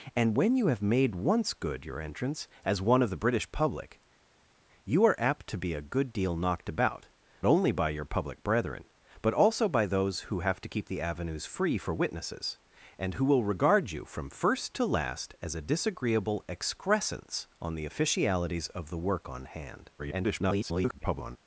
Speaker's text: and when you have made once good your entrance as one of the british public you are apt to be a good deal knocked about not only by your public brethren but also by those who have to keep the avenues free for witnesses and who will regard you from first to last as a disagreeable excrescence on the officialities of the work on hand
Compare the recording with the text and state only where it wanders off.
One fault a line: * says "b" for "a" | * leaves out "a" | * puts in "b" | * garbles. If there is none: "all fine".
* leaves out "not"
* garbles